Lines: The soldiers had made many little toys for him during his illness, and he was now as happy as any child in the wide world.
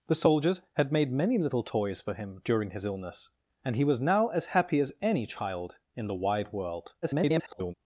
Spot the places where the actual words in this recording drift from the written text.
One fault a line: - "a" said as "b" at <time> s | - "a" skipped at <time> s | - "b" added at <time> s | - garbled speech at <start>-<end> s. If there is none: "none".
- garbled speech at 7.0-7.7 s